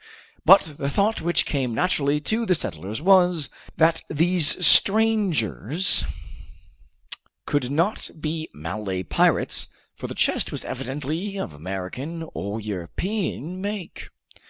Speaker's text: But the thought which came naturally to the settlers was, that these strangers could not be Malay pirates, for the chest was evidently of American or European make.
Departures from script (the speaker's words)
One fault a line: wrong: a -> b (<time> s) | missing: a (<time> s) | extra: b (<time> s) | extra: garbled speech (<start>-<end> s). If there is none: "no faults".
no faults